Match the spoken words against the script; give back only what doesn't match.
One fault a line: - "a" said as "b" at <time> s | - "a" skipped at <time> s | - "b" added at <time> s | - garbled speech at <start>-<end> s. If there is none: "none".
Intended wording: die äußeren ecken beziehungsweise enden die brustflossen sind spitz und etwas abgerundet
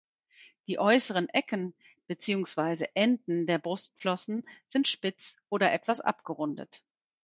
- "die" said as "der" at 3.5 s
- "und" said as "oder" at 5.5 s